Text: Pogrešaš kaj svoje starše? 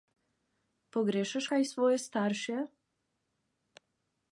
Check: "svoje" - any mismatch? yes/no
no